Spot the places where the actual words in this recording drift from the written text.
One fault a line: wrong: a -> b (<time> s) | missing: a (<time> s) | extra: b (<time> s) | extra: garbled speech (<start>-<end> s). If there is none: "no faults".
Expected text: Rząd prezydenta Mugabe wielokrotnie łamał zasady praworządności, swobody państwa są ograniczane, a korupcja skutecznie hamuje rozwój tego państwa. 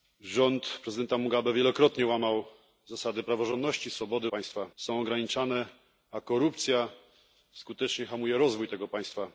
no faults